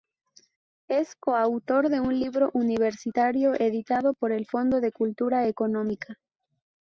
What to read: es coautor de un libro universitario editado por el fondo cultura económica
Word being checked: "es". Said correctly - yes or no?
yes